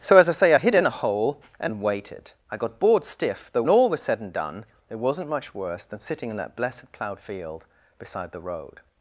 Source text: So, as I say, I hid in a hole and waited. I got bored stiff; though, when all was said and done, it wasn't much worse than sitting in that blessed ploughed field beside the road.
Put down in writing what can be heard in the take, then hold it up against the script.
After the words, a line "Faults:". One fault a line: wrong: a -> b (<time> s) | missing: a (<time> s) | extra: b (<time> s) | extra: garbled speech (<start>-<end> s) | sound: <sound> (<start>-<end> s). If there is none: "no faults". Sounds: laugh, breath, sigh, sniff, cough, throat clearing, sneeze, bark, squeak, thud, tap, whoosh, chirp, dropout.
So, as I say, I hid in a hole and waited. I got bored stiff; though, all was said and done, it wasn't much worse than sitting in that blessed ploughed field beside the road.
Faults:
missing: when (3.6 s)